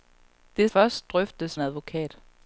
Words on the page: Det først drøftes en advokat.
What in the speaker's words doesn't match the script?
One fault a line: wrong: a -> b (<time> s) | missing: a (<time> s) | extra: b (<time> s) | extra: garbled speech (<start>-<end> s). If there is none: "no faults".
no faults